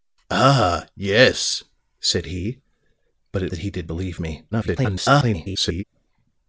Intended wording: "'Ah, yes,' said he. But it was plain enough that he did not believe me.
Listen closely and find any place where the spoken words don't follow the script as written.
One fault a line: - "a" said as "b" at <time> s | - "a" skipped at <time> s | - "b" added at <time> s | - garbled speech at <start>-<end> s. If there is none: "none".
- "was plain enough" skipped at 3.5 s
- "not" skipped at 3.9 s
- garbled speech at 4.5-5.8 s